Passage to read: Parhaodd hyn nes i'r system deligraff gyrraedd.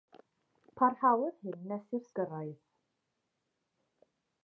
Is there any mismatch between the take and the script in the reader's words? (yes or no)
yes